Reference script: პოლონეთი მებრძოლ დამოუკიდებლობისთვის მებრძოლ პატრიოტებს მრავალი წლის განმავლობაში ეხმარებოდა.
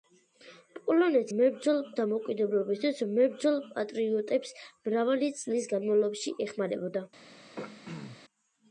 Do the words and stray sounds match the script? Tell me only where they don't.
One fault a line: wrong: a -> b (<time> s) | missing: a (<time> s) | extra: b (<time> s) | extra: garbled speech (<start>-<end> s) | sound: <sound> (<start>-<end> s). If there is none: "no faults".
sound: throat clearing (7.6-8.2 s)